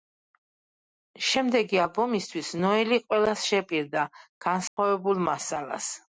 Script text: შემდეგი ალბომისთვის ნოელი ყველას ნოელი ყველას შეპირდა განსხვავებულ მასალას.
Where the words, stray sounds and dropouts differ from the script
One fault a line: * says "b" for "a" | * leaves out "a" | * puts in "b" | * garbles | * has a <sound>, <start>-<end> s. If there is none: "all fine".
* leaves out "ნოელი ყველას"
* has a dropout, 4.7-4.8 s